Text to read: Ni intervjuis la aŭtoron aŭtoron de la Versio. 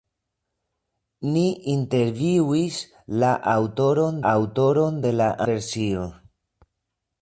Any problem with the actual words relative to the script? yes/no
no